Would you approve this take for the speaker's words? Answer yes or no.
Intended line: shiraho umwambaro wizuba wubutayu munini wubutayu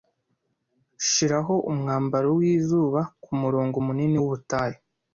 no